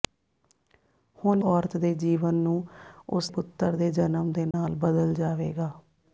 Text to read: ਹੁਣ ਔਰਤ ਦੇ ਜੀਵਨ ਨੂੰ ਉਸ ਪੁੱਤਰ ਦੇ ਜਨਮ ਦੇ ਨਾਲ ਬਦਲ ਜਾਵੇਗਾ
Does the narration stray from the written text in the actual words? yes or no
no